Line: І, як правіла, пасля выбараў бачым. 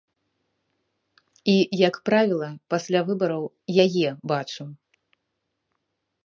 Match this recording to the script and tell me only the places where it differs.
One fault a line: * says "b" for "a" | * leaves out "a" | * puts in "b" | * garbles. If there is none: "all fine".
* puts in "яе"